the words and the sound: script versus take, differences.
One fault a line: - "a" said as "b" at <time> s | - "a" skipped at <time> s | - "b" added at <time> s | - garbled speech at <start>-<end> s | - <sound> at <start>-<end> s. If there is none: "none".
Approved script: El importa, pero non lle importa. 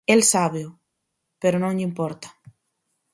- "importa" said as "sábeo" at 0.2 s